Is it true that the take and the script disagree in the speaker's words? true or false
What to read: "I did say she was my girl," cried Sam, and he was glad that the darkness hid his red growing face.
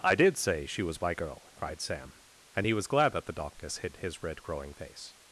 false